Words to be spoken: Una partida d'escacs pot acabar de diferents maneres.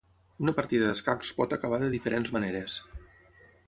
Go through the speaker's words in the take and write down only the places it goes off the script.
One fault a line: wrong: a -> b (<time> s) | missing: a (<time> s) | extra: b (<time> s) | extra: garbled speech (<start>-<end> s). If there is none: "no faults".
no faults